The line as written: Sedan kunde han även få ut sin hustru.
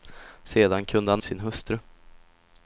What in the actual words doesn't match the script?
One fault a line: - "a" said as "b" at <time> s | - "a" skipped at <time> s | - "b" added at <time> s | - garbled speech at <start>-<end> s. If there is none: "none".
- "även få ut" skipped at 1.2 s